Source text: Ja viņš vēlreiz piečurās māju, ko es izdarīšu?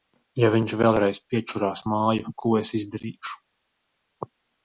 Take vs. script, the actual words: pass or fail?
pass